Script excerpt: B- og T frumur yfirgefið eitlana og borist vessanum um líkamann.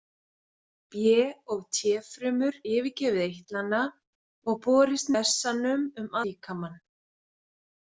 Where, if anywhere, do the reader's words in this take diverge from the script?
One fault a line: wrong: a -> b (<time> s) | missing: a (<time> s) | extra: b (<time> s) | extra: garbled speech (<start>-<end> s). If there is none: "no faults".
no faults